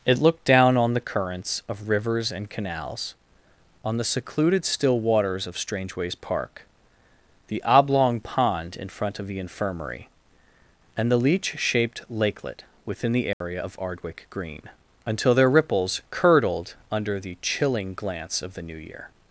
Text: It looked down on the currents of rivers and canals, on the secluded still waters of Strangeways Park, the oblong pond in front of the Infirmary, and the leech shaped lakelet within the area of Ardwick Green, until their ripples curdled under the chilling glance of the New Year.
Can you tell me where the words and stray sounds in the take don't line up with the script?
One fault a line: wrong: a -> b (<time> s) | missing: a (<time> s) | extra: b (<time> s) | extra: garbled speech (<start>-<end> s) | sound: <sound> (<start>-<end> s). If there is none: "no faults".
sound: dropout (13.3-13.4 s)